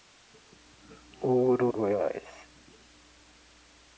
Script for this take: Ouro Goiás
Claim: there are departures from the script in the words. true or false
false